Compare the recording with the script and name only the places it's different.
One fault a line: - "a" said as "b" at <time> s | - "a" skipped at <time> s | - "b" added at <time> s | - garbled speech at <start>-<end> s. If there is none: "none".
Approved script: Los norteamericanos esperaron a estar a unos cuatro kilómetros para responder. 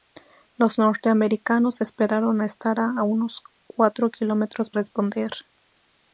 - "para" skipped at 4.7 s